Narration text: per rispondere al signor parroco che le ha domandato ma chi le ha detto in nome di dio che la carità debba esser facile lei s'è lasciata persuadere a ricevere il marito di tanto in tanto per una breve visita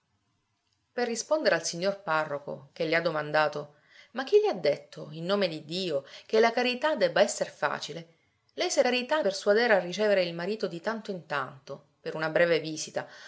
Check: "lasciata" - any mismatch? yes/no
yes